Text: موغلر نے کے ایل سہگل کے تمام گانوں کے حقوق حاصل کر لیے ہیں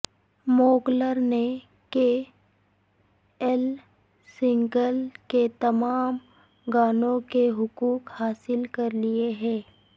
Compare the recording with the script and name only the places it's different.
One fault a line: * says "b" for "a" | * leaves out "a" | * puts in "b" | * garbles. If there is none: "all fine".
all fine